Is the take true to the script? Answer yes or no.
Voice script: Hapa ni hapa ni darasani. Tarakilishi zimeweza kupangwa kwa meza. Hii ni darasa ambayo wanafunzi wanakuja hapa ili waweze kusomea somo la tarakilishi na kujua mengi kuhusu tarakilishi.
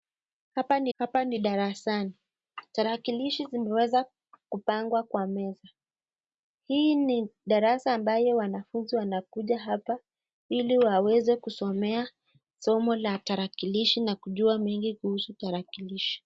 yes